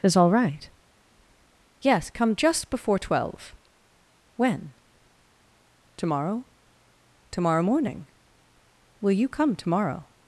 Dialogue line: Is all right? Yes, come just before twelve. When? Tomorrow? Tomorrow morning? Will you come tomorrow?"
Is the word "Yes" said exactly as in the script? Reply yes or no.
yes